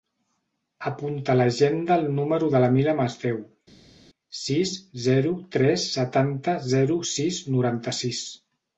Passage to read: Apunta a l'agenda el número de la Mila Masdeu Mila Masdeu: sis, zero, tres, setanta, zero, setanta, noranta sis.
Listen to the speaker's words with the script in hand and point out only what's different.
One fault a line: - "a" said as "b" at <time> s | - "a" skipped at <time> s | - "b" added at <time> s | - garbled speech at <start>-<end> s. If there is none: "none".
- "Mila Masdeu" skipped at 3.4 s
- "setanta" said as "sis" at 7.1 s